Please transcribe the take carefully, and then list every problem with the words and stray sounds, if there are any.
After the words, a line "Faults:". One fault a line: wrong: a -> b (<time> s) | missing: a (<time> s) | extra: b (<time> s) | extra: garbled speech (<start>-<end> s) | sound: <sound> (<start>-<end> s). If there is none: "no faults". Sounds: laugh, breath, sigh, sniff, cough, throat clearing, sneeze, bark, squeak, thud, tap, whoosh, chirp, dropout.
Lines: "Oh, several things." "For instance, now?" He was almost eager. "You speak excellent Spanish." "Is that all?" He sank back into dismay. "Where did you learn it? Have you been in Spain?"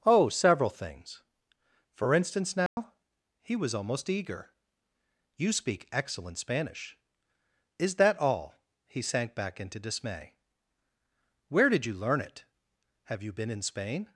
"Oh, several things." "For instance, now?" He was almost eager. "You speak excellent Spanish." "Is that all?" He sank back into dismay. "Where did you learn it? Have you been in Spain?"
Faults:
sound: dropout (2.7-2.8 s)